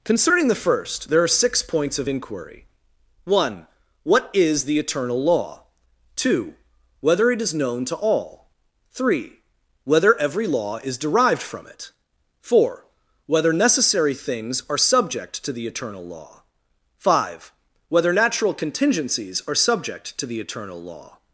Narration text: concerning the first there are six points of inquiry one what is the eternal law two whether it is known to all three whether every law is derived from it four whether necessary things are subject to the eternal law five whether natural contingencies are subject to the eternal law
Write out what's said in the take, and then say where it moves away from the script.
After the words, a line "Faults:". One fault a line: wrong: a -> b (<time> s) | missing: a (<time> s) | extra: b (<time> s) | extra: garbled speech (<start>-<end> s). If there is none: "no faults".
concerning the first there are six points of inquiry one what is the eternal law two whether it is known to all three whether every law is derived from it four whether necessary things are subject to the eternal law five whether natural contingencies are subject to the eternal law
Faults:
no faults